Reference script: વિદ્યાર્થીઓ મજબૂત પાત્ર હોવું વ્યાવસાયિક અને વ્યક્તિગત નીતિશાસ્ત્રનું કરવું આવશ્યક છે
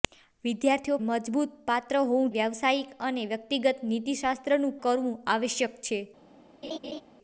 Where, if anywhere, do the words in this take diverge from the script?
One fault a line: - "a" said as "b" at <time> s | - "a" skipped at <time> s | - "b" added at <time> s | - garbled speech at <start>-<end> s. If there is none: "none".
none